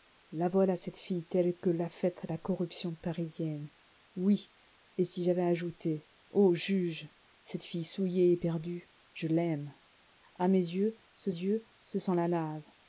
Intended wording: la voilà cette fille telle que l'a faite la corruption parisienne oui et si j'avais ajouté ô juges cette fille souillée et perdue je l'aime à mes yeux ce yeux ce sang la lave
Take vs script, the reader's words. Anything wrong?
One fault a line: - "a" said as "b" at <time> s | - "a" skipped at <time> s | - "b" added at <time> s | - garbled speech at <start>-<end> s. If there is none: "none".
none